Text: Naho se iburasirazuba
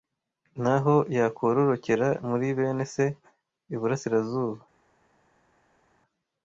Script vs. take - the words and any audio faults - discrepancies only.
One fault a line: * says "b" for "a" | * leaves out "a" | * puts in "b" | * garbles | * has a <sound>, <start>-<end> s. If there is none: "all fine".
* puts in "yakororokera muri bene"